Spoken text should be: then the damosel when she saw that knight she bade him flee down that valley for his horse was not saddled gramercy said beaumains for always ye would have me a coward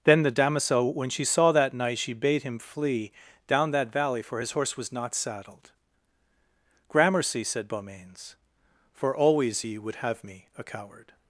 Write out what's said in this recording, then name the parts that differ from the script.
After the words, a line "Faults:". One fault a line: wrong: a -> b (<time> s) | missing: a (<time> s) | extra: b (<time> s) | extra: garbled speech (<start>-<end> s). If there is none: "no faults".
then the damosel when she saw that knight she bade him flee down that valley for his horse was not saddled gramercy said beaumains for always ye would have me a coward
Faults:
no faults